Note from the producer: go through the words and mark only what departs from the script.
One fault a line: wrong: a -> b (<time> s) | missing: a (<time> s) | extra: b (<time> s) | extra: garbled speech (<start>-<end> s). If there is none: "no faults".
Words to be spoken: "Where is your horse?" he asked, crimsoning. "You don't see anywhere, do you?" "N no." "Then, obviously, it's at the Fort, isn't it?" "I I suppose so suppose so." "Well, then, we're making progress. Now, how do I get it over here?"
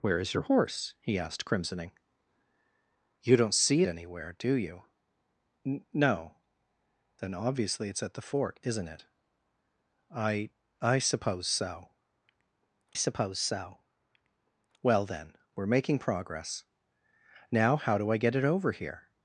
no faults